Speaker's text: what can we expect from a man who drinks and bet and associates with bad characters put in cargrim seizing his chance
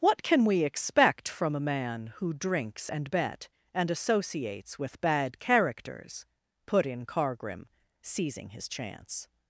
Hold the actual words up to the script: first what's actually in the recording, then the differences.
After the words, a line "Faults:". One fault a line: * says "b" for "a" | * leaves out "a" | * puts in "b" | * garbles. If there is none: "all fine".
what can we expect from a man who drinks and bet and associates with bad characters put in cargrim seizing his chance
Faults:
all fine